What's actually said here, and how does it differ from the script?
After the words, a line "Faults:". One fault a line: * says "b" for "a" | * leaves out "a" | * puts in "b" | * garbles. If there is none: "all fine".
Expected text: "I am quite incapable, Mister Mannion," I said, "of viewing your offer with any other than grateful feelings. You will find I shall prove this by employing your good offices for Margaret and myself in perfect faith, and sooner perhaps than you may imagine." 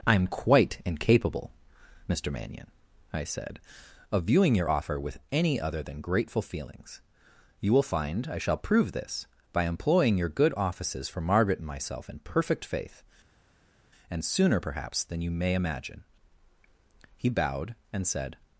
"I am quite incapable, Mister Mannion," I said, "of viewing your offer with any other than grateful feelings. You will find I shall prove this by employing your good offices for Margaret and myself in perfect faith, and sooner perhaps than you may imagine." He bowed and said
Faults:
* puts in "He bowed and said"